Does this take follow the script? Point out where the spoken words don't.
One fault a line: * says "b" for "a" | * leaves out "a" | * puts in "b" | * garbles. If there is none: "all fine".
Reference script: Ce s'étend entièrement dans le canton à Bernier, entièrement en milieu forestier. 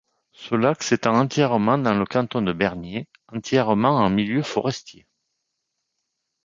* puts in "lac"
* says "de" for "à"